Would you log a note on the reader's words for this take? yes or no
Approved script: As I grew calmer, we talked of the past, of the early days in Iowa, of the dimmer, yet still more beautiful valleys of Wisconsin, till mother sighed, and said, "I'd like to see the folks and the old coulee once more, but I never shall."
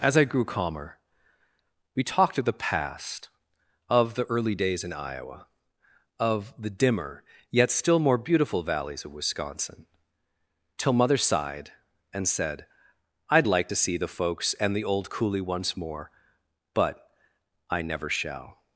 no